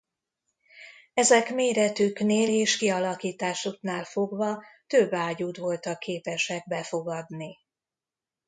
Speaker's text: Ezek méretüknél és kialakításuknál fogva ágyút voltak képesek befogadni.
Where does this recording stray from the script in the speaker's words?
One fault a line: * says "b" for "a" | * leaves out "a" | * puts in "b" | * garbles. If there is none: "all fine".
* puts in "több"